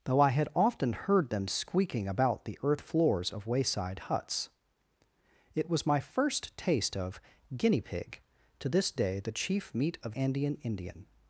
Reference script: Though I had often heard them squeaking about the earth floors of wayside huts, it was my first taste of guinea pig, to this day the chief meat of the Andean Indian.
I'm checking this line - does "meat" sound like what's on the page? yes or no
yes